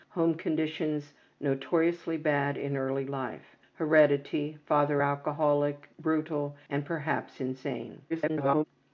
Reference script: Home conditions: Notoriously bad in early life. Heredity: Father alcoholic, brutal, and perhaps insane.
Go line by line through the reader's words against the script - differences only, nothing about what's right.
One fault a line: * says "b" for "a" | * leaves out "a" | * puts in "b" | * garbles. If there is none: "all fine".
* garbles